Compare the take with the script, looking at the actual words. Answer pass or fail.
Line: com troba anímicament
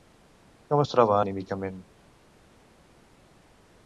fail